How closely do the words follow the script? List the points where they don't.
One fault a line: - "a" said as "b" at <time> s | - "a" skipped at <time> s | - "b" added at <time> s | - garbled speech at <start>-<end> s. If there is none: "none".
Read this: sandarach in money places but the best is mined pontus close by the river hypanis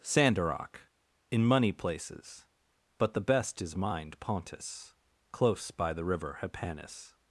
none